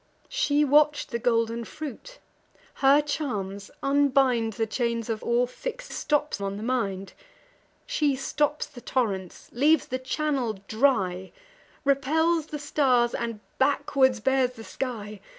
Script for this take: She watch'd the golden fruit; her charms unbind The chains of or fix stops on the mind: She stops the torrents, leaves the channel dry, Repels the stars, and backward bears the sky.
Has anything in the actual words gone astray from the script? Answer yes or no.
no